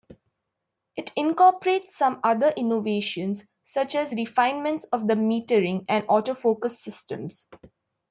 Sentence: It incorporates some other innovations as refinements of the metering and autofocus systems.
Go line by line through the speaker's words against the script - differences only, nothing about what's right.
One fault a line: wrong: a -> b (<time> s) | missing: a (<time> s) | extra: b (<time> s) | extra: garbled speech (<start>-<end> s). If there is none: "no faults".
extra: such (3.6 s)